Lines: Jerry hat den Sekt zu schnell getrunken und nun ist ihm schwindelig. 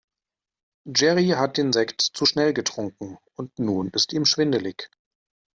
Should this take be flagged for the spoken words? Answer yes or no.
no